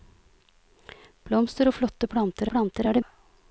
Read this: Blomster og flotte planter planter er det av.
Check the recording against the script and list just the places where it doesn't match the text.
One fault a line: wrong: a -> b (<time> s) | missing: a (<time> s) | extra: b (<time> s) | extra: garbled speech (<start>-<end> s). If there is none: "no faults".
no faults